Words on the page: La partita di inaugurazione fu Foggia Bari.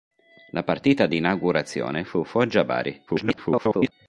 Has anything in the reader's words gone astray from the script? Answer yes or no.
yes